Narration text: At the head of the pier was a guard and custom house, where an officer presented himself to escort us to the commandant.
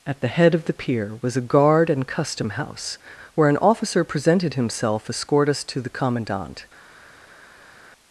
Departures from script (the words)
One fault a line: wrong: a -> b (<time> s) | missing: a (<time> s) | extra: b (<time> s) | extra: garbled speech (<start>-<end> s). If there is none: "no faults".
missing: to (5.1 s)